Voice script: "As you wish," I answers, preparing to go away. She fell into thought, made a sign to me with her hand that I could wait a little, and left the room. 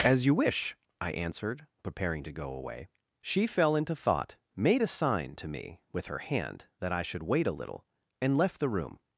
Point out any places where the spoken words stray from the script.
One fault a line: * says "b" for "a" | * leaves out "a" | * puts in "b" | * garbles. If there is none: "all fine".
* says "answered" for "answers"
* says "should" for "could"